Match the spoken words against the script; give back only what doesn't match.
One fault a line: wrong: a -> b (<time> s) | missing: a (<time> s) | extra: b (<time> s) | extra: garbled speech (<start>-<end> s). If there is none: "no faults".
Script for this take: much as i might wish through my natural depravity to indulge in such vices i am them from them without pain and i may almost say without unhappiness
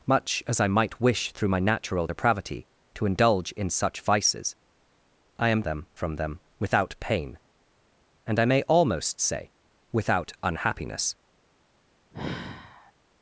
no faults